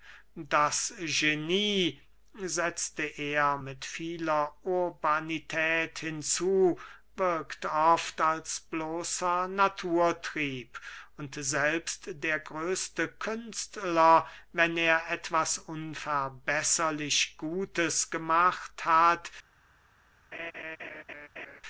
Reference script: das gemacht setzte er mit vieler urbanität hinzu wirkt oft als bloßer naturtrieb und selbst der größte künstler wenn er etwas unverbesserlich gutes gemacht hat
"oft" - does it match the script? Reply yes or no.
yes